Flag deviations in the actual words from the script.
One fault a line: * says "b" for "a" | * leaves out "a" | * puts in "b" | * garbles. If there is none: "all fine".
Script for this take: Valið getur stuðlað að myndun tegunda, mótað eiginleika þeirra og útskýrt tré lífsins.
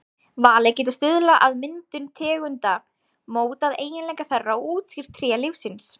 all fine